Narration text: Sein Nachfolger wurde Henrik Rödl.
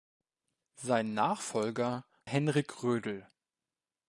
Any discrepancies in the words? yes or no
yes